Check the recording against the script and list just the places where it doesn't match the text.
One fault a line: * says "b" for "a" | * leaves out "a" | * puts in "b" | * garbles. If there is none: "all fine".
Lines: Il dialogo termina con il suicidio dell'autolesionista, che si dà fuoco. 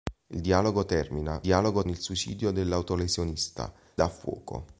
* says "dialogo" for "con"
* leaves out "che si"